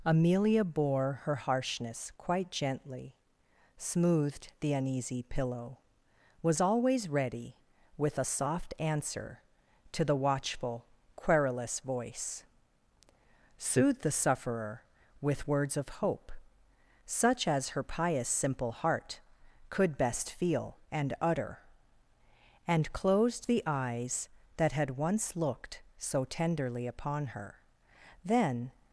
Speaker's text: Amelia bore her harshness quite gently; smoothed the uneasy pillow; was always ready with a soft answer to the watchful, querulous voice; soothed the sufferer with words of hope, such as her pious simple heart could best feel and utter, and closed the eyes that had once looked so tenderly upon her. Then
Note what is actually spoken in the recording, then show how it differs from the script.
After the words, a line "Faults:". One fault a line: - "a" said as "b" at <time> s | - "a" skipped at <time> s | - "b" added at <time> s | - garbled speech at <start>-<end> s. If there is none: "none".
Amelia bore her harshness quite gently; smoothed the uneasy pillow; was always ready with a soft answer to the watchful, querulous voice; soothed the sufferer with words of hope, such as her pious simple heart could best feel and utter, and closed the eyes that had once looked so tenderly upon her. Then
Faults:
none